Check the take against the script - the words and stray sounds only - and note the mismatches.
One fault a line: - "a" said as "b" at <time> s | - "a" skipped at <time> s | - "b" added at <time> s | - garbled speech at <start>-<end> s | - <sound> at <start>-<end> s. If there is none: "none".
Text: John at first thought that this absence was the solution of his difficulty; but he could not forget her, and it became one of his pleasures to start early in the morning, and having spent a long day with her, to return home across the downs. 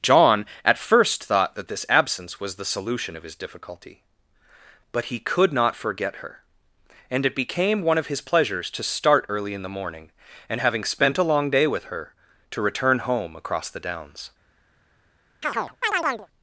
- chirp at 15.4-16.3 s